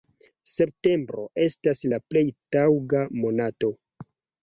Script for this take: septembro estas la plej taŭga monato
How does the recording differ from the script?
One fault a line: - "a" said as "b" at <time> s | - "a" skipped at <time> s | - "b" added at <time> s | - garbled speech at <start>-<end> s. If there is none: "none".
none